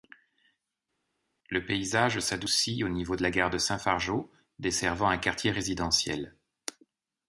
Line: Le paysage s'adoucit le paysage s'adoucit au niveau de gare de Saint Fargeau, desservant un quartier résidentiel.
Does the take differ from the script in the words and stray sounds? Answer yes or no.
yes